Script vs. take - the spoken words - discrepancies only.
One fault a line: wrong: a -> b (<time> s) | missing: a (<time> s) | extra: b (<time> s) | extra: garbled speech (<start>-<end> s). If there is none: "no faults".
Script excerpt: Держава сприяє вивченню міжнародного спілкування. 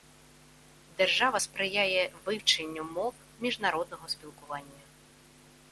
extra: мов (2.9 s)